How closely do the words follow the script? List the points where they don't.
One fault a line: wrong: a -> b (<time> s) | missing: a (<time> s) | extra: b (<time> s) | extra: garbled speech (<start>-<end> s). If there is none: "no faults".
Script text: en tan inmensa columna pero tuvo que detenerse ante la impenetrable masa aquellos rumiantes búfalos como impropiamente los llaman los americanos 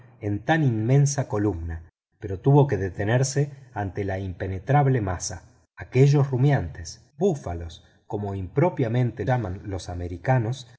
missing: los (9.2 s)